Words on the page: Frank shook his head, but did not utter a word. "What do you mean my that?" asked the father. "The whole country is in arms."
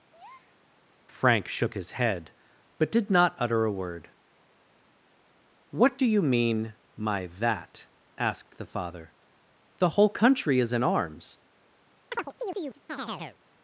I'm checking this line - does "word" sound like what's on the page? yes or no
yes